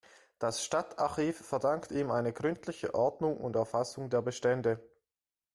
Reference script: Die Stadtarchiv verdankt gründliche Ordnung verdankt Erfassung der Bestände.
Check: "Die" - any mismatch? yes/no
yes